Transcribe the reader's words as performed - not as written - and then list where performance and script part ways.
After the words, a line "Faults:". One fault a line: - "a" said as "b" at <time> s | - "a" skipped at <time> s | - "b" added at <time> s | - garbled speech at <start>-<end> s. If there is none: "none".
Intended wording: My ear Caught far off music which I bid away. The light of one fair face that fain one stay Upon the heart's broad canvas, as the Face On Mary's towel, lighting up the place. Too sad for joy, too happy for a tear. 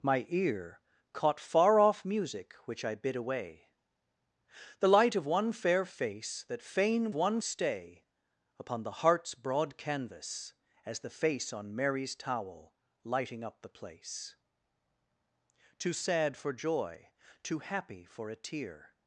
My ear Caught far off music which I bid away. The light of one fair face that fain one stay Upon the heart's broad canvas, as the Face On Mary's towel, lighting up the place. Too sad for joy, too happy for a tear.
Faults:
none